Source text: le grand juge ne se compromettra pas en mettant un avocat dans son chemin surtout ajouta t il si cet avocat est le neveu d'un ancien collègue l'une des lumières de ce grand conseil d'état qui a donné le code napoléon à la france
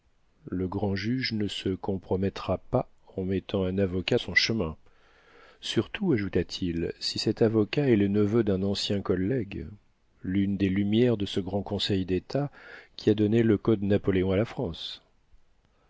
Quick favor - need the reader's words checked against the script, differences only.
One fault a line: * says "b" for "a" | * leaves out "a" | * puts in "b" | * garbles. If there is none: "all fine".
* leaves out "dans"